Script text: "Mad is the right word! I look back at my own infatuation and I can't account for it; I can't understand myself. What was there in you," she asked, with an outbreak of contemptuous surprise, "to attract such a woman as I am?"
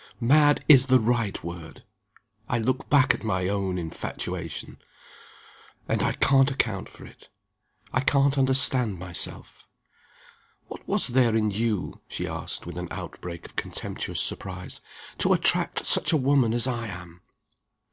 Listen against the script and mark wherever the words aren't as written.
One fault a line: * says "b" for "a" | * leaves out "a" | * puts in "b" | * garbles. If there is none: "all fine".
all fine